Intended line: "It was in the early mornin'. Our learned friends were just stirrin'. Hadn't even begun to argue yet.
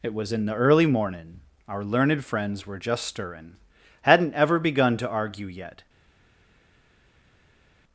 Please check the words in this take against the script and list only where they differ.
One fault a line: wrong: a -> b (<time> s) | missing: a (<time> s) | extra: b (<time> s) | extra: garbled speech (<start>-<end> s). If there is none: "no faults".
wrong: even -> ever (4.3 s)